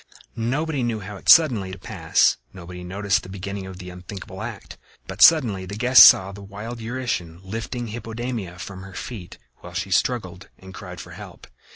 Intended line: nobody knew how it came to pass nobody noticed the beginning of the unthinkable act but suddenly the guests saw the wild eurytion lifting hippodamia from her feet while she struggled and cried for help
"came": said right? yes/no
no